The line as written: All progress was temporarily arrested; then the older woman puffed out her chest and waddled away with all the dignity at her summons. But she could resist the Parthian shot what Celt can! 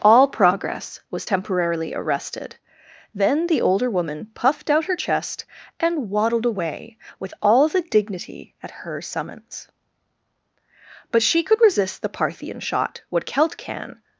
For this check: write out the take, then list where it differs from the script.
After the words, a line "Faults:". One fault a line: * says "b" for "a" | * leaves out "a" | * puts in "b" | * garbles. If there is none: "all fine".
All progress was temporarily arrested; then the older woman puffed out her chest and waddled away with all the dignity at her summons. But she could resist the Parthian shot what Celt can!
Faults:
all fine